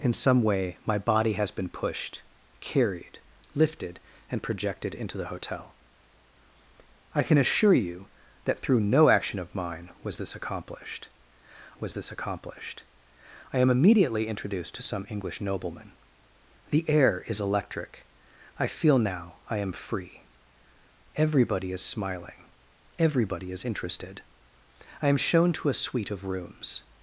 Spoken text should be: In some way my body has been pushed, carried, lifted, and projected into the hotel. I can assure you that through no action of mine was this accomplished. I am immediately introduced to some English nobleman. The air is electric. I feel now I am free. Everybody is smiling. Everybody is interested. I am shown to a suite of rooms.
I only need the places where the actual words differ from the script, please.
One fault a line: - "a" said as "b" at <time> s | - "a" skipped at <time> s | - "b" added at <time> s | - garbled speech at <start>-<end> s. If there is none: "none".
- "was this accomplished" added at 11.8 s